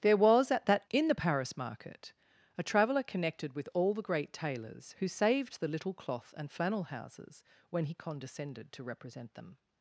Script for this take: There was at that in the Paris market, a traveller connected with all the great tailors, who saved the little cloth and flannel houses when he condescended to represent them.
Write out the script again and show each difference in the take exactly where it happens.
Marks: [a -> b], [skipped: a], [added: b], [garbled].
There was at that in the Paris market, a traveller connected with all the great tailors, who saved the little cloth and flannel houses when he condescended to represent them.